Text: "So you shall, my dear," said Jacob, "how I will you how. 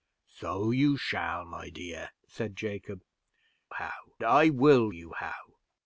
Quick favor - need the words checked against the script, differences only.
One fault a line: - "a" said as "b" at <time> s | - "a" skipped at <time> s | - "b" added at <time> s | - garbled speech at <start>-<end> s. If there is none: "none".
none